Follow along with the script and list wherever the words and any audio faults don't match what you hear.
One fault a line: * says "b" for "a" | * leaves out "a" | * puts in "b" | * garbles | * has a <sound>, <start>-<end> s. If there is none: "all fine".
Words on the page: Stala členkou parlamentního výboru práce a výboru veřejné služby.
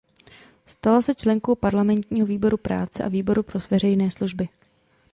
* puts in "se"
* puts in "pro"